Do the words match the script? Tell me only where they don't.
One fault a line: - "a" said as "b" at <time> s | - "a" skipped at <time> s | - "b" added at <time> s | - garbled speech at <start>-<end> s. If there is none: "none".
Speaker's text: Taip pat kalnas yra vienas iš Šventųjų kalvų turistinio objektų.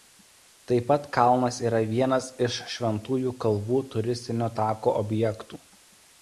- "tako" added at 4.6 s